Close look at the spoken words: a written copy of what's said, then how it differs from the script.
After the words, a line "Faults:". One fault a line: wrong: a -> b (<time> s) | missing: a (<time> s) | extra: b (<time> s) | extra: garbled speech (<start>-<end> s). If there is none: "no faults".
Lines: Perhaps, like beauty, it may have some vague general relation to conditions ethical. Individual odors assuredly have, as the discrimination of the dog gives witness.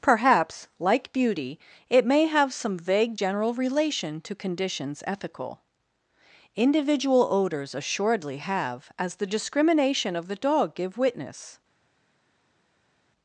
Perhaps, like beauty, it may have some vague general relation to conditions ethical. Individual odors assuredly have, as the discrimination of the dog give witness.
Faults:
wrong: gives -> give (10.7 s)